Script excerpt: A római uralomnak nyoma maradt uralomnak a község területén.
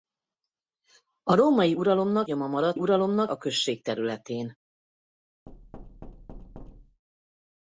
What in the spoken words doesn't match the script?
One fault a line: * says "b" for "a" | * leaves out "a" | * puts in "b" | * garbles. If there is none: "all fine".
all fine